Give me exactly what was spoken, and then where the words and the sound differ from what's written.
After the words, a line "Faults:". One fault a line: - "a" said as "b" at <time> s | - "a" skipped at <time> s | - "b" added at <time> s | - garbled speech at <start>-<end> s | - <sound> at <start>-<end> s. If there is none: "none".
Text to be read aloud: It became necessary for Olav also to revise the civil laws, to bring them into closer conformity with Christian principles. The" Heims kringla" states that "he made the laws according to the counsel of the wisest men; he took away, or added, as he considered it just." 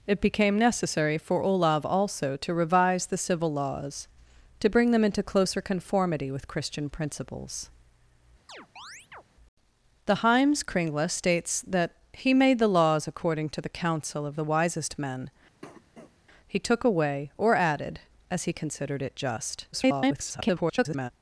It became necessary for Olav also to revise the civil laws, to bring them into closer conformity with Christian principles. The" Heims kringla" states that "he made the laws according to the counsel of the wisest men; he took away, or added, as he considered it just." [garbled]
Faults:
- chirp at 8.5-9.2 s
- cough at 15.6-16.2 s
- garbled speech at 19.7-21.1 s